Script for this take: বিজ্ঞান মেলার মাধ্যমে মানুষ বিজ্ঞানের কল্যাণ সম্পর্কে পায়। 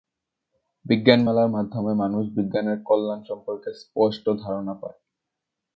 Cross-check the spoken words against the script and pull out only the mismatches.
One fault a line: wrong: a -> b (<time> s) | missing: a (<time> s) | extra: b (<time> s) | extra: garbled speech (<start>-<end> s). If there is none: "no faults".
extra: স্পষ্ট ধারণা (3.8 s)